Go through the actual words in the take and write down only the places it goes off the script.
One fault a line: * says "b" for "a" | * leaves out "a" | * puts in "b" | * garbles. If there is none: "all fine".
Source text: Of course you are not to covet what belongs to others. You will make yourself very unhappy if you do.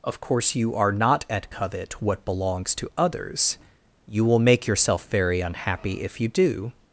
* says "at" for "to"